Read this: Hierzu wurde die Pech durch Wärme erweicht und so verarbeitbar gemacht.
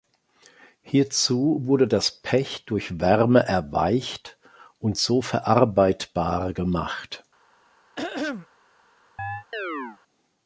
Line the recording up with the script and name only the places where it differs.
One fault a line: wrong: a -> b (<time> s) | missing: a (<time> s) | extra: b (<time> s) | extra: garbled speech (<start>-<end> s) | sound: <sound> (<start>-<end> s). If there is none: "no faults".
wrong: die -> das (1.9 s)
sound: throat clearing (8.0-8.5 s)
sound: chirp (9.2-10.0 s)